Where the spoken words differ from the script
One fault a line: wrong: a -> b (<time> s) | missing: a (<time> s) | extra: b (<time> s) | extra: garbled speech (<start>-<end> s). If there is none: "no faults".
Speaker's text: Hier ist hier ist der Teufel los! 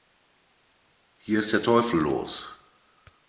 missing: hier ist (1.5 s)